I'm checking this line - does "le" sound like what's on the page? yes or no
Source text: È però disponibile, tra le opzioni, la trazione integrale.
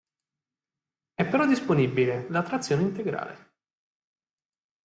no